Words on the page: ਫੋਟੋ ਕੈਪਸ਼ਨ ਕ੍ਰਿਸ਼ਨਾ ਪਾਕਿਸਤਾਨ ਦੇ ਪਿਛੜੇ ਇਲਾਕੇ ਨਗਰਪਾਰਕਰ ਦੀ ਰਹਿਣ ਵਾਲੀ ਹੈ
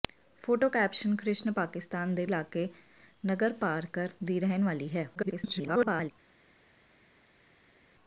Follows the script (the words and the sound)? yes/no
no